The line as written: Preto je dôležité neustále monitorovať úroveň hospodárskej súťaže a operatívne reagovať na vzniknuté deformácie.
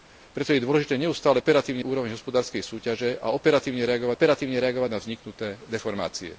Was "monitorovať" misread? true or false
true